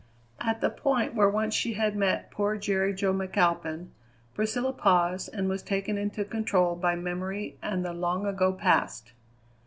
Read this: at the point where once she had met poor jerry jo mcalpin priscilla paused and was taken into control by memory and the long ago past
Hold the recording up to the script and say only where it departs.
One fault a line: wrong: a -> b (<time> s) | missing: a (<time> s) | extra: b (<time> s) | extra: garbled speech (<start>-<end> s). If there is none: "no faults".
no faults